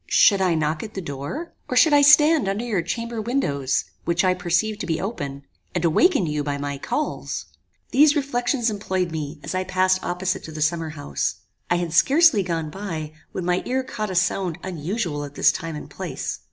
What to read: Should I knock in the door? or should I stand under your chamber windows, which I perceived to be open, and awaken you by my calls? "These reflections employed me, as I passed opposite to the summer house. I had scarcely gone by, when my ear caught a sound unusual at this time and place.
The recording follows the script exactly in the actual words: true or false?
false